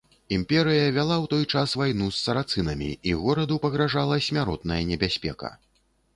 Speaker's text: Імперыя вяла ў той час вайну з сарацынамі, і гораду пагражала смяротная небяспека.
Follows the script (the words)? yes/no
yes